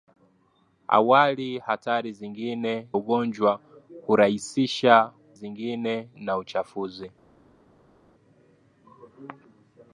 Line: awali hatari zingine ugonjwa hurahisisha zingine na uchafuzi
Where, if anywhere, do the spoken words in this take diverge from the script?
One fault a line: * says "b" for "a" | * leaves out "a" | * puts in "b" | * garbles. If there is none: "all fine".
all fine